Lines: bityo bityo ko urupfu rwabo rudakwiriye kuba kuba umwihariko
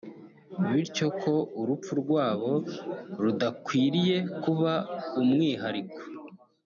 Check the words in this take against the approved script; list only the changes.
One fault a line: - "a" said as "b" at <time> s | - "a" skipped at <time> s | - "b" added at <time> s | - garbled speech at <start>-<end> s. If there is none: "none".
- "bityo" skipped at 1.1 s
- "kuba" skipped at 4.7 s